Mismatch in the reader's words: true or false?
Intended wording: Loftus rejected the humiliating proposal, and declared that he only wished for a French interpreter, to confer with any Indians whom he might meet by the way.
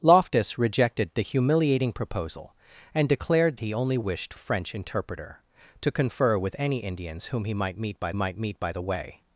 true